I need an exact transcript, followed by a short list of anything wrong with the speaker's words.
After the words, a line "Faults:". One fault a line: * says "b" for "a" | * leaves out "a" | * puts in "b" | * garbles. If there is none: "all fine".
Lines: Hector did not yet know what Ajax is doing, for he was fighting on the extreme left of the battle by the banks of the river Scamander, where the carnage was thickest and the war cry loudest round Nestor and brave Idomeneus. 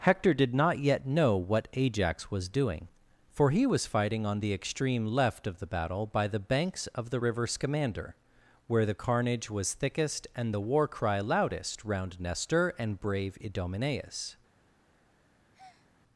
Hector did not yet know what Ajax was doing, for he was fighting on the extreme left of the battle by the banks of the river Scamander, where the carnage was thickest and the war cry loudest round Nestor and brave Idomeneus.
Faults:
* says "was" for "is"